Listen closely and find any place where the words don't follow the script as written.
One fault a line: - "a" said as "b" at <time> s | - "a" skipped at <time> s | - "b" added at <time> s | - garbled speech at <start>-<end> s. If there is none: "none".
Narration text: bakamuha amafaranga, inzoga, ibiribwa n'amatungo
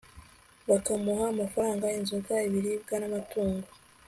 none